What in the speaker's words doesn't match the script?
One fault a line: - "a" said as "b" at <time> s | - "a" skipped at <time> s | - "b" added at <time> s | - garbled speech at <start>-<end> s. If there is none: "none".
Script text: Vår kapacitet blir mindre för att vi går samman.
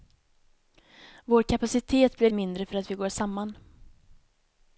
none